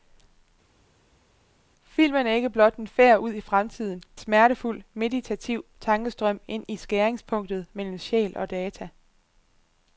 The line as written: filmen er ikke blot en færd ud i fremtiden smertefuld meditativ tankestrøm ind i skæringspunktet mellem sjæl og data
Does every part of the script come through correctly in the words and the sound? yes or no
yes